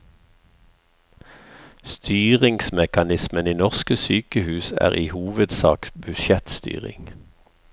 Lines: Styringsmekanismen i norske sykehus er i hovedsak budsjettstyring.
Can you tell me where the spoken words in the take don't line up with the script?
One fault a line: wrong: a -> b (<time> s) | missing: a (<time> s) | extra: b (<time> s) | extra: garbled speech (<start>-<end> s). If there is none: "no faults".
no faults